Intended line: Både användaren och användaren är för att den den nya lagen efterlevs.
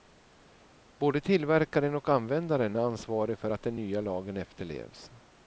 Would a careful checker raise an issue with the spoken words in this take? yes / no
yes